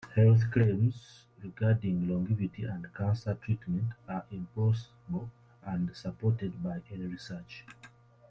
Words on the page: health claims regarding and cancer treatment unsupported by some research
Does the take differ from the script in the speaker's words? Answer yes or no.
yes